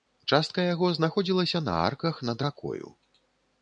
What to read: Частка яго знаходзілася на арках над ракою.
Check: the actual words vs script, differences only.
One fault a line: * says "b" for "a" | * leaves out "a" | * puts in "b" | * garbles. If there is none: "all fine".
all fine